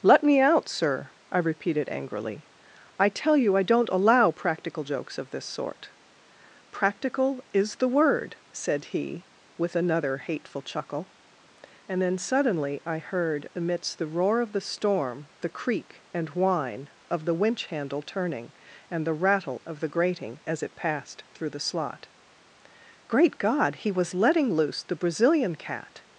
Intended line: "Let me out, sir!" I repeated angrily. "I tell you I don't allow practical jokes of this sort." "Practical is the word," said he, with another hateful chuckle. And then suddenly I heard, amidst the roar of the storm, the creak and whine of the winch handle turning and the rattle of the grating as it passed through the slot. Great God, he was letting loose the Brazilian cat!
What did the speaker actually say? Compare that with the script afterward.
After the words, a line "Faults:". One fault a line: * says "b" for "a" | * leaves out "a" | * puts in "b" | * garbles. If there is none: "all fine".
"Let me out, sir!" I repeated angrily. "I tell you I don't allow practical jokes of this sort." "Practical is the word," said he, with another hateful chuckle. And then suddenly I heard, amidst the roar of the storm, the creak and whine of the winch handle turning and the rattle of the grating as it passed through the slot. Great God, he was letting loose the Brazilian cat!
Faults:
all fine